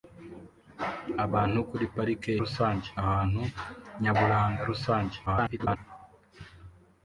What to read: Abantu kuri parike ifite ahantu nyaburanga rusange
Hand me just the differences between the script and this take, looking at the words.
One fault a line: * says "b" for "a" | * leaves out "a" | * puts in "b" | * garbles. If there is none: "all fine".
* says "rusange" for "ifite"
* garbles